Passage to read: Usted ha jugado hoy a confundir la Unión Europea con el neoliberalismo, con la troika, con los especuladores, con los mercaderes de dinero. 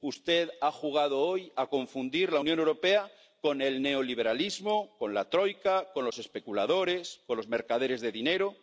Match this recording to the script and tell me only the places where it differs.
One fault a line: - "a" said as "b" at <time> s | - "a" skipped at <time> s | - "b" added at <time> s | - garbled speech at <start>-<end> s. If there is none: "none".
none